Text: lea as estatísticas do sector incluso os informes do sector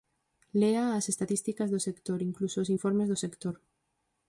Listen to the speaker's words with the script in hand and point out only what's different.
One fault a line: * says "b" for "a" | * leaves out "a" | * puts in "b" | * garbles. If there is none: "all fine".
all fine